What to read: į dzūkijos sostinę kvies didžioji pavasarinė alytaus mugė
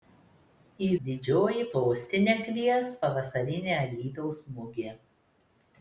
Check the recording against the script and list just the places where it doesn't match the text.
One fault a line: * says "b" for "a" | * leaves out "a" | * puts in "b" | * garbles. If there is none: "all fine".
* says "didžioji" for "dzūkijos"
* leaves out "didžioji"